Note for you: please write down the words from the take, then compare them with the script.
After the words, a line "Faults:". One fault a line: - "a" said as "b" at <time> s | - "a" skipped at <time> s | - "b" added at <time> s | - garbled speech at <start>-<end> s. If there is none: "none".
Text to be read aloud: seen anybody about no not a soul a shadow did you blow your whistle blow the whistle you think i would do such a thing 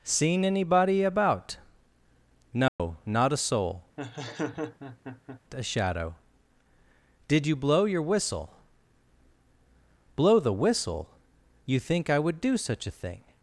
seen anybody about no not a soul a shadow did you blow your whistle blow the whistle you think i would do such a thing
Faults:
none